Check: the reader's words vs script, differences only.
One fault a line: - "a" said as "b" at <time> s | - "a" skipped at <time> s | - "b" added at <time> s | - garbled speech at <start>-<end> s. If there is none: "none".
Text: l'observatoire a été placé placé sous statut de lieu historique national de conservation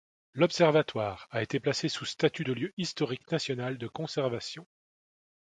- "placé" skipped at 1.9 s